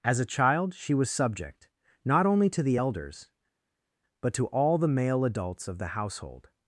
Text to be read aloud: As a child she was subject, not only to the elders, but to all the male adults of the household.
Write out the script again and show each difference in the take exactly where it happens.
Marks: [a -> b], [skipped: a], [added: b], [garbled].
As a child she was subject, not only to the elders, but to all the male adults of the household.